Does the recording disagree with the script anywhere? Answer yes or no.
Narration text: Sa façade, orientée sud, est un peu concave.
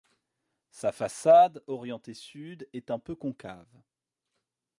no